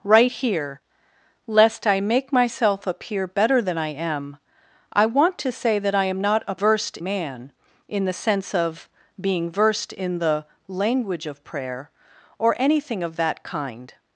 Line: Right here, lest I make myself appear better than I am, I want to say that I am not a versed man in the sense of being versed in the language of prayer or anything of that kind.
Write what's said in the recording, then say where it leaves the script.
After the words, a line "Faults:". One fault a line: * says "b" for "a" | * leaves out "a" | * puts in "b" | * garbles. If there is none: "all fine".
Right here, lest I make myself appear better than I am, I want to say that I am not a versed man in the sense of being versed in the language of prayer or anything of that kind.
Faults:
all fine